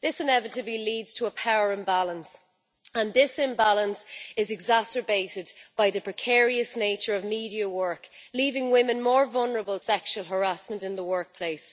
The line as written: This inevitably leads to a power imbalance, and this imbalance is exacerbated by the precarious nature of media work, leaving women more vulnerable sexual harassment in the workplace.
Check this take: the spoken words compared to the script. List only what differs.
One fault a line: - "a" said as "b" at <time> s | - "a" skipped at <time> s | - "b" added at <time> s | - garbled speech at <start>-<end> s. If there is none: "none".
none